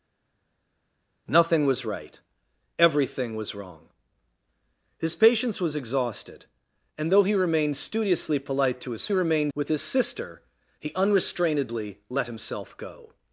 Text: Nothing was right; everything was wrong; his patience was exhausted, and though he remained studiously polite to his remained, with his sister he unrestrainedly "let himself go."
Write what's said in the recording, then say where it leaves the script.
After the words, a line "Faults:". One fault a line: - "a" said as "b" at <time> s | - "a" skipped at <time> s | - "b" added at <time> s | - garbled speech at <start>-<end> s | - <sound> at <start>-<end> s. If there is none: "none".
Nothing was right; everything was wrong; his patience was exhausted, and though he remained studiously polite to his remained, with his sister he unrestrainedly "let himself go."
Faults:
none